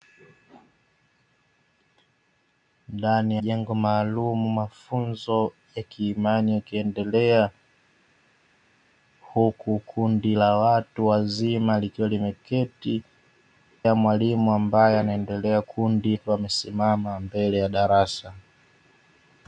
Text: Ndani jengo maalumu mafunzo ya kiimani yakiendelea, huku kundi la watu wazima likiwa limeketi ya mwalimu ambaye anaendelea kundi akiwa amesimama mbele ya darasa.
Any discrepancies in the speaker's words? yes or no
no